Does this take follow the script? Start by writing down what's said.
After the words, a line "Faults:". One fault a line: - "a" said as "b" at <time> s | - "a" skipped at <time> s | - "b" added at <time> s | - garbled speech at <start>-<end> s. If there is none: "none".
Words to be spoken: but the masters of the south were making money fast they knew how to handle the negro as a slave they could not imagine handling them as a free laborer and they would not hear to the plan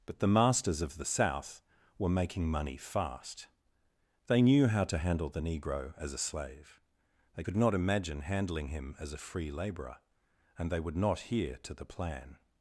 but the masters of the south were making money fast they knew how to handle the negro as a slave they could not imagine handling him as a free laborer and they would not hear to the plan
Faults:
- "them" said as "him" at 8.7 s